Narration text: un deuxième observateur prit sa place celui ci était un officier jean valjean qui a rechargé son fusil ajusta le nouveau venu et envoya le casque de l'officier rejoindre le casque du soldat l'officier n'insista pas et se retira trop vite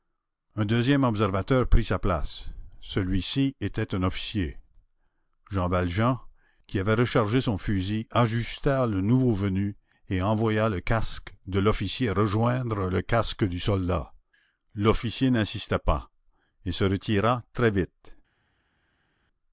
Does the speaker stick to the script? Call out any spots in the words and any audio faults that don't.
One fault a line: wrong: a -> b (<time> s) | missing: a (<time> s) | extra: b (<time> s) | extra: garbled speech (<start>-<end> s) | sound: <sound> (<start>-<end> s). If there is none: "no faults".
wrong: a -> avait (6.8 s)
wrong: trop -> très (17.5 s)